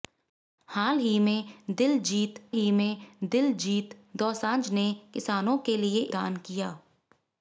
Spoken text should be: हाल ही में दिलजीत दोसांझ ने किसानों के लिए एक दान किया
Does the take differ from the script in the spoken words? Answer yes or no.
yes